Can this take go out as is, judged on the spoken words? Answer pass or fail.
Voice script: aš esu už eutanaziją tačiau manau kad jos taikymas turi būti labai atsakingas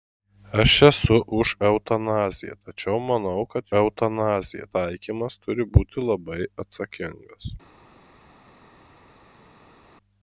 fail